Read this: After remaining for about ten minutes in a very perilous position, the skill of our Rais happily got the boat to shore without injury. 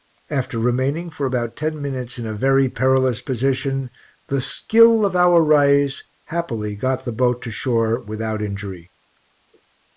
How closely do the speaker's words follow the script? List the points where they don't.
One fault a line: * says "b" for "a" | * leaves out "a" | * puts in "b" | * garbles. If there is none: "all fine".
all fine